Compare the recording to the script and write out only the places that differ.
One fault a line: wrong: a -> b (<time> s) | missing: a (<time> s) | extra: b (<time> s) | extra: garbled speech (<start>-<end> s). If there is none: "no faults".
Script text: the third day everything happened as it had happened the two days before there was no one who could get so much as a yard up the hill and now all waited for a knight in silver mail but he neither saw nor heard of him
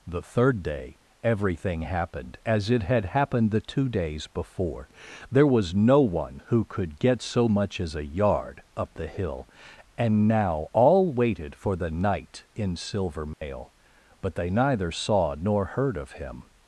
wrong: a -> the (11.7 s)
wrong: he -> they (14.3 s)